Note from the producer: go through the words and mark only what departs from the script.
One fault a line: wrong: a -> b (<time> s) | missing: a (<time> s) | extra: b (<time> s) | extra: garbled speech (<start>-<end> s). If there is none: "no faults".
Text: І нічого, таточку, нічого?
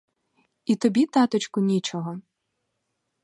wrong: нічого -> тобі (0.8 s)